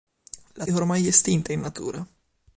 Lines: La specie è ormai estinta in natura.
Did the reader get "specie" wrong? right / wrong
wrong